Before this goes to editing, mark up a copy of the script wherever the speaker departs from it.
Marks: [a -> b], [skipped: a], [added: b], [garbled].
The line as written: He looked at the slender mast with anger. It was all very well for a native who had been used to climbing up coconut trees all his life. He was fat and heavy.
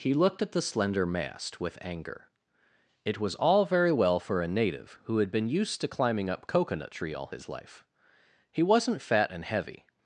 He looked at the slender mast with anger. It was all very well for a native who had been used to climbing up coconut [trees -> tree] all his life. He [was -> wasn't] fat and heavy.